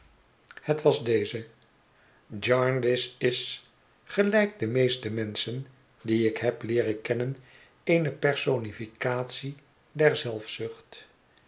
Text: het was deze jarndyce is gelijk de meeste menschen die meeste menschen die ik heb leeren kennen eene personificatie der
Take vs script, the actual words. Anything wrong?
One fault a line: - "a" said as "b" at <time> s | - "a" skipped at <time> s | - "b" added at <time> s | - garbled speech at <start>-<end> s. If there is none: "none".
- "meeste menschen die" skipped at 6.3 s